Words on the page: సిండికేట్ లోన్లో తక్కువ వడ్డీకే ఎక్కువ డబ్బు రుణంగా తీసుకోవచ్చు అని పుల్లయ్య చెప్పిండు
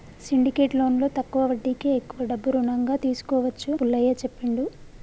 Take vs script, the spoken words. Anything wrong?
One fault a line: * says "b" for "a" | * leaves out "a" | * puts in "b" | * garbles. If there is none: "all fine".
* leaves out "అని"